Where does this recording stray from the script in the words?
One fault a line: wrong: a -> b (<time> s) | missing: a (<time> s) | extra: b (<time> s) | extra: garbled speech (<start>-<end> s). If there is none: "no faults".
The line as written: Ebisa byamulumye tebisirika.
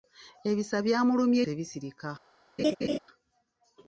no faults